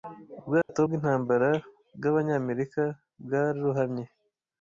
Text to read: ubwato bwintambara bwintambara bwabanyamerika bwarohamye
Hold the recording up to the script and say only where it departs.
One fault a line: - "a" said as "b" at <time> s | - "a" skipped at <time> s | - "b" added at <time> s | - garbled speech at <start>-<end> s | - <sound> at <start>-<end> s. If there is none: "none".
- dropout at 0.6-0.7 s
- "bwintambara" skipped at 1.5 s